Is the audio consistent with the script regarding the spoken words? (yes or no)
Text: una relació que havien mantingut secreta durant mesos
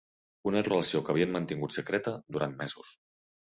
yes